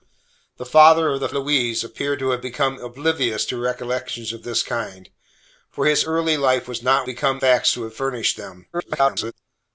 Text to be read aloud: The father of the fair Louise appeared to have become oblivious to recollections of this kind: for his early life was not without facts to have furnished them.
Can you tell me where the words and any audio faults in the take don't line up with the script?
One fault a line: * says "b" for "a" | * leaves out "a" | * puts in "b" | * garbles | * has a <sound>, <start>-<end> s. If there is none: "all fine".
* leaves out "fair"
* says "become" for "without"
* garbles